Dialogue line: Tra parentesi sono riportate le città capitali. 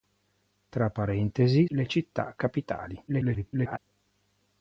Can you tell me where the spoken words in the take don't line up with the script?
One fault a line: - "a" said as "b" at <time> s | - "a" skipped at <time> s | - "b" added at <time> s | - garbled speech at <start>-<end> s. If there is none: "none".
- "sono riportate" skipped at 1.7 s
- garbled speech at 3.1-3.8 s